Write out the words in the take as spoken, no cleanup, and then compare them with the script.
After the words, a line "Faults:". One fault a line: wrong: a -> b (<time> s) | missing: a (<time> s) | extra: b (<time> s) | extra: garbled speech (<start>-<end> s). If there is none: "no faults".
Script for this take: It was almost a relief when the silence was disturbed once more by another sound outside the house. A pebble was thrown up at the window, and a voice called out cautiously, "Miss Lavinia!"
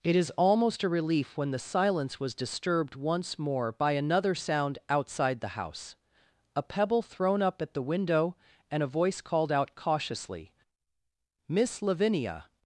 It is almost a relief when the silence was disturbed once more by another sound outside the house. A pebble thrown up at the window, and a voice called out cautiously, "Miss Lavinia!"
Faults:
wrong: was -> is (0.1 s)
missing: was (7.0 s)